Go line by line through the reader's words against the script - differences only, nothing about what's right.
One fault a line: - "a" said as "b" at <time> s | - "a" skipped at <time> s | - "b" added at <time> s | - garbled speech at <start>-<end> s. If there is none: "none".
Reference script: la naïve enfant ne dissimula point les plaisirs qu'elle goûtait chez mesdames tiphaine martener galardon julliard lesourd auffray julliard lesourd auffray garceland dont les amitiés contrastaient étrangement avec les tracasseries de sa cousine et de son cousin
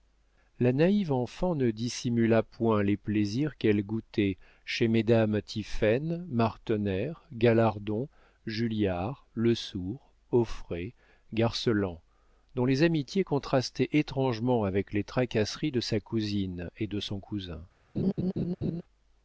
- "julliard lesourd auffray" skipped at 10.9 s